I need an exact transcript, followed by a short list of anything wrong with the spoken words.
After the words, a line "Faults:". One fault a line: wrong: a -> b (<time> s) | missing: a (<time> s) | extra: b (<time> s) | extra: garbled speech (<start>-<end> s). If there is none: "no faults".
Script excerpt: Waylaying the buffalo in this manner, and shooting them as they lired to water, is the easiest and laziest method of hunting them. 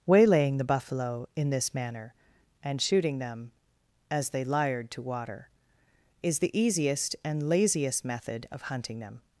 Waylaying the buffalo in this manner, and shooting them as they lired to water, is the easiest and laziest method of hunting them.
Faults:
no faults